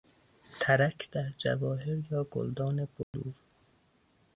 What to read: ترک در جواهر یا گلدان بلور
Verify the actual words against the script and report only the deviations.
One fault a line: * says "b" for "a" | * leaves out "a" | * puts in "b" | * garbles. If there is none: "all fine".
all fine